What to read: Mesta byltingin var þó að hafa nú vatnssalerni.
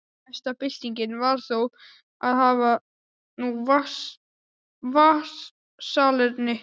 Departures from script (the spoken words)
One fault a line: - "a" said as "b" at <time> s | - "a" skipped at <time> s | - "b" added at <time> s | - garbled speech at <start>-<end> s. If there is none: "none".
none